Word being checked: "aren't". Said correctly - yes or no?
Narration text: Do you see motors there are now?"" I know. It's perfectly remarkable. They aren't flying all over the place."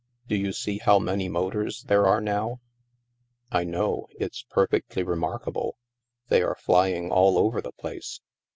no